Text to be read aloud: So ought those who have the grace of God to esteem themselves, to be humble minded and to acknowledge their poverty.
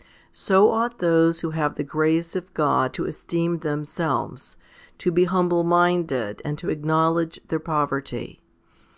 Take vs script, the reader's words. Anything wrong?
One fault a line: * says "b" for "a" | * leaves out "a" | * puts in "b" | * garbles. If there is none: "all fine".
all fine